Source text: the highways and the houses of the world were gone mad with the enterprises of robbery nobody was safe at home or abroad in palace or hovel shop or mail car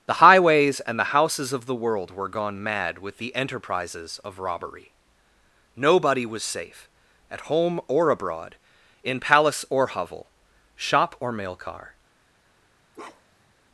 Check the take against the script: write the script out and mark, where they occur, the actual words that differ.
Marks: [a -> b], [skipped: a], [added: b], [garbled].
the highways and the houses of the world were gone mad with the enterprises of robbery nobody was safe at home or abroad in palace or hovel shop or mail car